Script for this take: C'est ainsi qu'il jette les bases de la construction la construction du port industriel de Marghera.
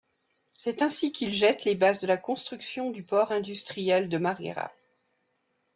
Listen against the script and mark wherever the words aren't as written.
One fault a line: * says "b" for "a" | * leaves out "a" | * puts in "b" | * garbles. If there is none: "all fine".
* leaves out "la construction"